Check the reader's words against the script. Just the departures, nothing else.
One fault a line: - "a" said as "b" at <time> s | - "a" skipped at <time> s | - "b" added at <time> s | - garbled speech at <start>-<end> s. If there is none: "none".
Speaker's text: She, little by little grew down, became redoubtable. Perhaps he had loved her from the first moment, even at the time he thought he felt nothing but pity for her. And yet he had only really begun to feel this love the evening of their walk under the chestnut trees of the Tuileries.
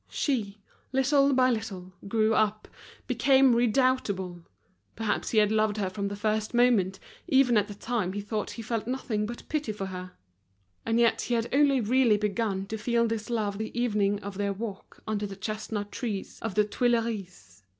- "down" said as "up" at 2.3 s